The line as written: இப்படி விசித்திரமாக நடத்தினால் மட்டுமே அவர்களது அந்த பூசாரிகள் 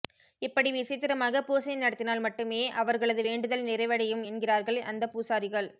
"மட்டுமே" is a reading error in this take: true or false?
false